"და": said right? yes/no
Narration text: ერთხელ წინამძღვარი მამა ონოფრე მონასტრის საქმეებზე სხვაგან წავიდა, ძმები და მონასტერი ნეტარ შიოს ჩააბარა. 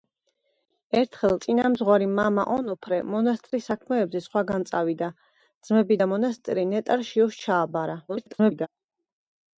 yes